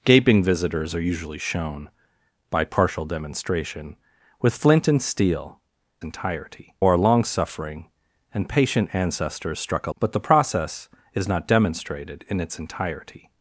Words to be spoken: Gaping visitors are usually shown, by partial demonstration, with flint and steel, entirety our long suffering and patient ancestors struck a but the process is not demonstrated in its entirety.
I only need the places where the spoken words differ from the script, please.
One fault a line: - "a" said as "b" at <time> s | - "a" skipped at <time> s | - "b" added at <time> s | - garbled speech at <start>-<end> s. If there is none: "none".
none